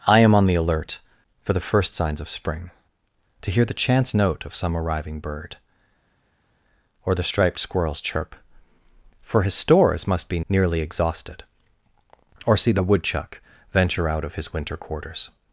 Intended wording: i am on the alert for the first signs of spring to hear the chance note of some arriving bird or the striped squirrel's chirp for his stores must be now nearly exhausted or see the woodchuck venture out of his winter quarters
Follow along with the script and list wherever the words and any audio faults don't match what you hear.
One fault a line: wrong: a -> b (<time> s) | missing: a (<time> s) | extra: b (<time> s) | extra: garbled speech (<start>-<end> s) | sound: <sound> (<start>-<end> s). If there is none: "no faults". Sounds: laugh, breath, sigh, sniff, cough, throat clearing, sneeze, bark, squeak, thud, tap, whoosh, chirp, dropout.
missing: now (10.4 s)